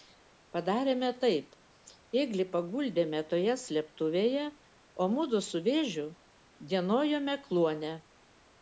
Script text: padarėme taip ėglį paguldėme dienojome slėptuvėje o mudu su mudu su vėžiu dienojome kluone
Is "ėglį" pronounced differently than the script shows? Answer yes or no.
no